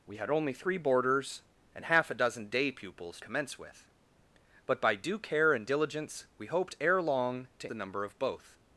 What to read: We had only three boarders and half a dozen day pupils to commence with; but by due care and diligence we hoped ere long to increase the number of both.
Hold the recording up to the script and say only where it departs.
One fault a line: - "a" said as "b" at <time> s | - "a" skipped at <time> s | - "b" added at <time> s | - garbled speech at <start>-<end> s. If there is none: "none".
- "to" skipped at 3.2 s
- "increase" skipped at 7.7 s